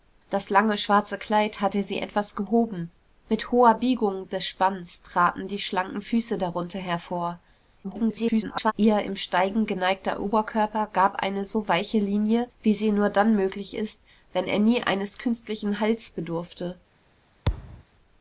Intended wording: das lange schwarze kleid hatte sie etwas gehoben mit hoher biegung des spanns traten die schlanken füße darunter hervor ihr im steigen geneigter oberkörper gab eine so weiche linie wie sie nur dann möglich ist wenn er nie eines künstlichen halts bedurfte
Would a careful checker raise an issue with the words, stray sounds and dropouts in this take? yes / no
yes